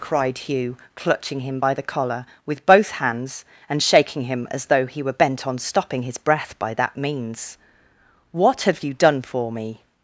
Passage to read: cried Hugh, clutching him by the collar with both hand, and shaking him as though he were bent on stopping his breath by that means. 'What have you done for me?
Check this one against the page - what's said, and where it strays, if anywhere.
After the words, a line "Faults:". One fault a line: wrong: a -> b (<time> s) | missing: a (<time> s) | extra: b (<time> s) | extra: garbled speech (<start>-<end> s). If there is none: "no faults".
cried Hugh, clutching him by the collar with both hands, and shaking him as though he were bent on stopping his breath by that means. 'What have you done for me?
Faults:
wrong: hand -> hands (2.9 s)